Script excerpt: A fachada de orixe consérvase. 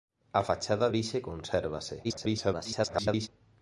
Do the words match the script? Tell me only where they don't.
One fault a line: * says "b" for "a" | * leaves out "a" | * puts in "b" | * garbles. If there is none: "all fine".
* leaves out "de"
* garbles